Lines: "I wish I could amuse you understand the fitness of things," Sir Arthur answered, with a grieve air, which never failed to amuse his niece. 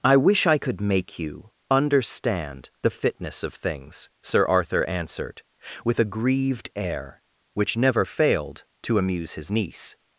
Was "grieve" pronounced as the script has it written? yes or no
no